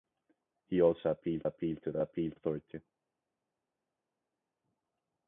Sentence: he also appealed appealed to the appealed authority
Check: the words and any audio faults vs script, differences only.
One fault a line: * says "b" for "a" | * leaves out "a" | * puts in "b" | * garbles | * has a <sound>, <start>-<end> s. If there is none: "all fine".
all fine